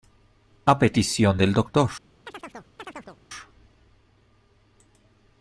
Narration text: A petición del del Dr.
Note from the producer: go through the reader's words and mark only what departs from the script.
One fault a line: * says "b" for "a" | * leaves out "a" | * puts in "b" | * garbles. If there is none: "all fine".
* leaves out "del"